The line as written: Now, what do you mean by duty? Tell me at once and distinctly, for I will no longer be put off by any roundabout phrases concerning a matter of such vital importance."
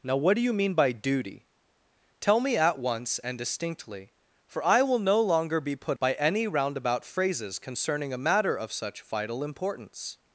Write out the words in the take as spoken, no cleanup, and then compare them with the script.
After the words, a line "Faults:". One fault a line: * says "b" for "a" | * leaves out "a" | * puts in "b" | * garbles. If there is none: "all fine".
Now, what do you mean by duty? Tell me at once and distinctly, for I will no longer be put by any roundabout phrases concerning a matter of such vital importance."
Faults:
* leaves out "off"